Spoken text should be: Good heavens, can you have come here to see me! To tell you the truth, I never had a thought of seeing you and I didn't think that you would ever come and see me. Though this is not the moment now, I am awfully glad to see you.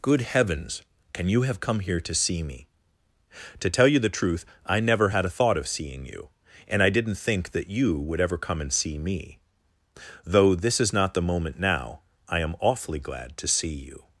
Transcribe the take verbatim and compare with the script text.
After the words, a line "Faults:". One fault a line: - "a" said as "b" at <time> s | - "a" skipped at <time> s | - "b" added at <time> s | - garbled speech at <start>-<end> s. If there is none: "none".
Good heavens, can you have come here to see me! To tell you the truth, I never had a thought of seeing you and I didn't think that you would ever come and see me. Though this is not the moment now, I am awfully glad to see you.
Faults:
none